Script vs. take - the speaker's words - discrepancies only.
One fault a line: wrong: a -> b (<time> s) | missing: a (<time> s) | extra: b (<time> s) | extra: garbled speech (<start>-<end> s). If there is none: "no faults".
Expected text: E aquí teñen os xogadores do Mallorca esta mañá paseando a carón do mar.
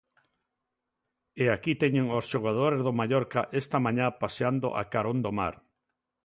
no faults